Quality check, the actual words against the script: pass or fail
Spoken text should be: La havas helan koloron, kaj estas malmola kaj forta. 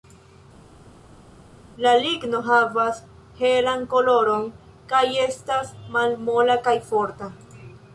fail